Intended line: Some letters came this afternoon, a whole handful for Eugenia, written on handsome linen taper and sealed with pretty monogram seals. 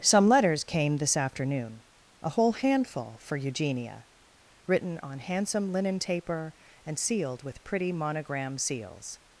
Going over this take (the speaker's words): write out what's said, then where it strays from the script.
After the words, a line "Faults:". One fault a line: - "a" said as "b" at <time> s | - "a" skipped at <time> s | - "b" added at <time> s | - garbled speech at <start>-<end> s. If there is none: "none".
Some letters came this afternoon, a whole handful for Eugenia, written on handsome linen taper and sealed with pretty monogram seals.
Faults:
none